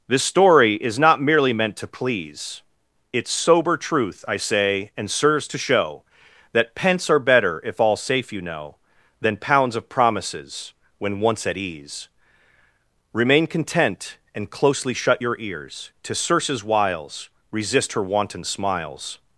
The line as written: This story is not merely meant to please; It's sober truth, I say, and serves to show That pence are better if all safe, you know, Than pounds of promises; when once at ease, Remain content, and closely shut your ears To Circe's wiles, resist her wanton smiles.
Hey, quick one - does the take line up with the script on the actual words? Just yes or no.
yes